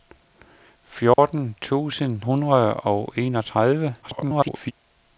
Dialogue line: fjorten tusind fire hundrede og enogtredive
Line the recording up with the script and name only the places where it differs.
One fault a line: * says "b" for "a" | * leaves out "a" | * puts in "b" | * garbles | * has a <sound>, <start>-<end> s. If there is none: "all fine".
* has a dropout, 1.1-1.2 s
* leaves out "fire"
* garbles